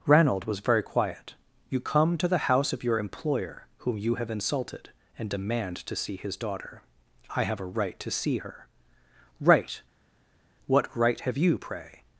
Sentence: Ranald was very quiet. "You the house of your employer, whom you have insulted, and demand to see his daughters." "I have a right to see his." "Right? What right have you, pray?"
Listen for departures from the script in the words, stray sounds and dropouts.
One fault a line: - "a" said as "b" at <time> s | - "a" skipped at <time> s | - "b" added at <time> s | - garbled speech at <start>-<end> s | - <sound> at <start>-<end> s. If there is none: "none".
- "come to" added at 1.8 s
- "daughters" said as "daughter" at 6.4 s
- "his" said as "her" at 8.4 s